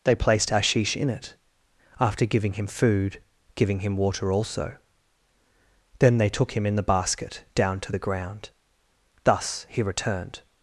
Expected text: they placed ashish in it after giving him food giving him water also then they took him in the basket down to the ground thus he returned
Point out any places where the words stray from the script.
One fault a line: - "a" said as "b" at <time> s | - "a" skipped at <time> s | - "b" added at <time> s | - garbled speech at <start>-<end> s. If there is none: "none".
none